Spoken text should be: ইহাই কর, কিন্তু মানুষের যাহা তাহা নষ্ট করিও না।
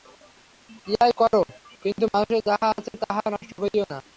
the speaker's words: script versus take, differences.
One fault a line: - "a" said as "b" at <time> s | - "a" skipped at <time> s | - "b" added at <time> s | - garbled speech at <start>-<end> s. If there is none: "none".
- "আছে" added at 2.7 s